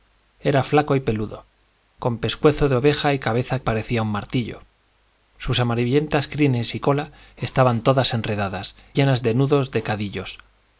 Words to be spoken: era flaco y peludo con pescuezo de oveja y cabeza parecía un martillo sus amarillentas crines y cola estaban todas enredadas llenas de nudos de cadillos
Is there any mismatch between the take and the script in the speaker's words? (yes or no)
no